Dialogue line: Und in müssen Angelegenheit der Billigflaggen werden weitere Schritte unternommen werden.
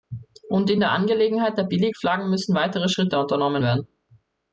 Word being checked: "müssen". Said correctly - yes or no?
no